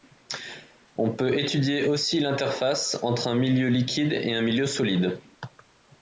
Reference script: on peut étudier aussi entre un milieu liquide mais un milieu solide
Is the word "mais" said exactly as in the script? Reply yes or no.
no